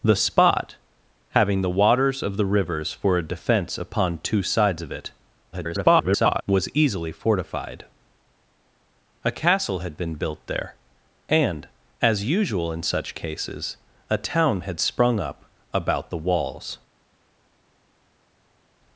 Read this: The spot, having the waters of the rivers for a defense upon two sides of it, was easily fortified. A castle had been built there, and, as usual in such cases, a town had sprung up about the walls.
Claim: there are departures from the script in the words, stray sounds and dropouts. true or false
true